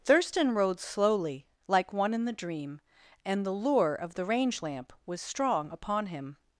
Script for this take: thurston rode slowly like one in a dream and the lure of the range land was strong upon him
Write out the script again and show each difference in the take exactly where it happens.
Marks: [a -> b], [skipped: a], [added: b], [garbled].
thurston rode slowly like one in [a -> the] dream and the lure of the range [land -> lamp] was strong upon him